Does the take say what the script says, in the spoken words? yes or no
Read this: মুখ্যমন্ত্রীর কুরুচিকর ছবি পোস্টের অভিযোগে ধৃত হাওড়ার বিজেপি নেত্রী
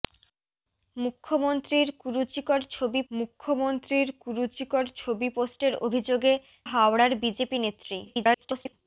no